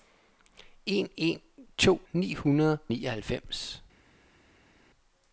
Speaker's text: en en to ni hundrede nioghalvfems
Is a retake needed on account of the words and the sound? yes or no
no